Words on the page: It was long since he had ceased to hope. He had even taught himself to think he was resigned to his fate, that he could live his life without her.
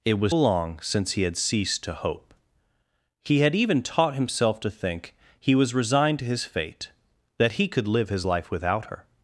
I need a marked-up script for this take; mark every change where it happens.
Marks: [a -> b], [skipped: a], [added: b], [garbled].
It was long since he had ceased to hope. He had even taught himself to think he was resigned to his fate, that he could live his life without her.